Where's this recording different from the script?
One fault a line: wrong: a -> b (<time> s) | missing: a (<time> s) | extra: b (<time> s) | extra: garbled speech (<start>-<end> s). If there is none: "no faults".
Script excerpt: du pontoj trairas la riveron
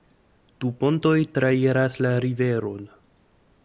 no faults